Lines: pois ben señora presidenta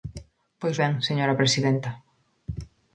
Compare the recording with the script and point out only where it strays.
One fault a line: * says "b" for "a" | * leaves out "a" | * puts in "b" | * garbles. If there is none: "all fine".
all fine